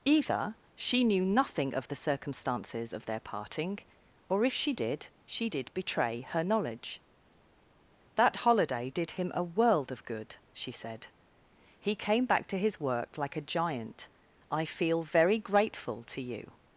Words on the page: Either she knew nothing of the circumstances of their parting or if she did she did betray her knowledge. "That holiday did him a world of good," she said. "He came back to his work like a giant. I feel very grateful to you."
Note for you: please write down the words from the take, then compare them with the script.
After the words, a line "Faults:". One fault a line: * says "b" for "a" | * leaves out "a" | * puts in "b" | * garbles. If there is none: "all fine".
Either she knew nothing of the circumstances of their parting or if she did she did betray her knowledge. "That holiday did him a world of good," she said. "He came back to his work like a giant. I feel very grateful to you."
Faults:
all fine